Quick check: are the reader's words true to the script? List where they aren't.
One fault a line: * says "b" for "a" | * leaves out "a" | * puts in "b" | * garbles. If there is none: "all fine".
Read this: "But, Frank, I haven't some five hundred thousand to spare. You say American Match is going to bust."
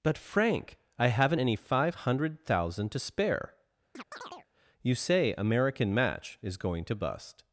* says "any" for "some"